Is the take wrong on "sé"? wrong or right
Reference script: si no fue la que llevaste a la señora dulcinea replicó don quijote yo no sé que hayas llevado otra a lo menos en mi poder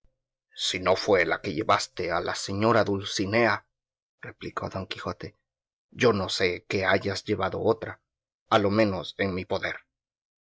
right